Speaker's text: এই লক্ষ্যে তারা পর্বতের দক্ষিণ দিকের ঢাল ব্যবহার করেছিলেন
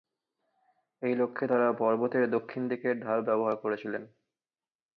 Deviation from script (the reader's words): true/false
false